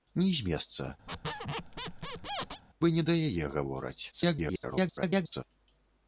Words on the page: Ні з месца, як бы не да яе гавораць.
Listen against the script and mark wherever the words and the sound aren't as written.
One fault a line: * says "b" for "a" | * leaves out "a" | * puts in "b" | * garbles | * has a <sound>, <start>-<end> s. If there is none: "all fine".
* leaves out "як"
* has a squeak, 1.1-2.6 s
* garbles